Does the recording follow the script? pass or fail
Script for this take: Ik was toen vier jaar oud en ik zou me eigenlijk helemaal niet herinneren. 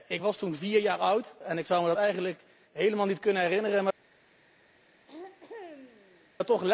fail